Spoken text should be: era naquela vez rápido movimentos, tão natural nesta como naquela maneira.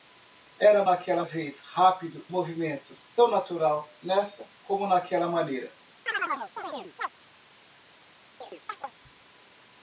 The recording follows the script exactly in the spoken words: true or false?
true